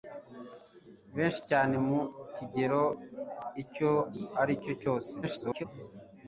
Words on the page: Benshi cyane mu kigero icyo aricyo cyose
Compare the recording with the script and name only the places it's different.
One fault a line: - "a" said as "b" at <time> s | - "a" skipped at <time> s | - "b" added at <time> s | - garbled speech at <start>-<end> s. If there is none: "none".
- garbled speech at 5.2-5.6 s